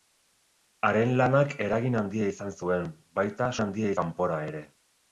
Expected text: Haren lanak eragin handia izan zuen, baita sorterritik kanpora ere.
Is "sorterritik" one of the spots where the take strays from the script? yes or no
yes